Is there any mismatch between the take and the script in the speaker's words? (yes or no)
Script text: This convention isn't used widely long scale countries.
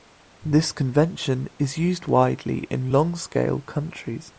yes